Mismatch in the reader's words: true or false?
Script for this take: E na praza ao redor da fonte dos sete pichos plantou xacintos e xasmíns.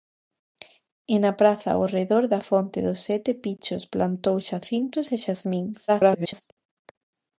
true